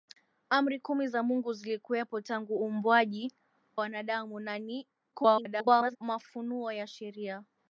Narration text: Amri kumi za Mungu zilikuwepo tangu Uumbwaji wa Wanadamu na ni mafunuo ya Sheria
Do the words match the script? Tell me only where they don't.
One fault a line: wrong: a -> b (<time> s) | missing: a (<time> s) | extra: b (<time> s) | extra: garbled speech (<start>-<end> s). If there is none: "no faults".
missing: wa (3.3 s)
extra: garbled speech (5.1-6.0 s)